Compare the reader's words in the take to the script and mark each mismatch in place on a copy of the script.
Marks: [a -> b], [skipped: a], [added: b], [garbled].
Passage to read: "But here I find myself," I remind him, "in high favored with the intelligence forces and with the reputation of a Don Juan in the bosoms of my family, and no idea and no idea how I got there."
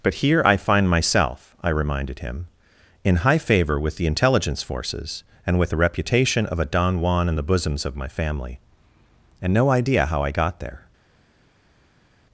"But here I find myself," I [remind -> reminded] him, "in high [favored -> favor] with the intelligence forces and with the reputation of a Don Juan in the bosoms of my family, and no idea [skipped: and no idea] how I got there."